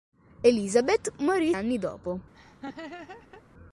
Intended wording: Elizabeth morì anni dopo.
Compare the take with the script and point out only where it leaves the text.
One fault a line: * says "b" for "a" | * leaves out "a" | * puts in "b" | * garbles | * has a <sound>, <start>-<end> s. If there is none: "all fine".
* has a laugh, 2.3-3.4 s